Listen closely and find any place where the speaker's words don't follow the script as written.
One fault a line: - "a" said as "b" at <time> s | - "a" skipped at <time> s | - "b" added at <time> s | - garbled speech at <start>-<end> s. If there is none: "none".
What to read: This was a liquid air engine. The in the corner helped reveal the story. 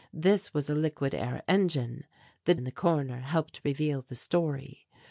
none